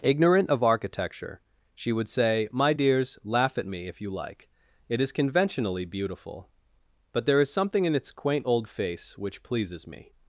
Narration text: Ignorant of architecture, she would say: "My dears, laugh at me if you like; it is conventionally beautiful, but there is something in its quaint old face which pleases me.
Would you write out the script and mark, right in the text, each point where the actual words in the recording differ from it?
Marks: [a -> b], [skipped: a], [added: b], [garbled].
Ignorant of architecture, she would say: "My dears, laugh at me if you like; it is conventionally beautiful, but there is something in its quaint old face which pleases me.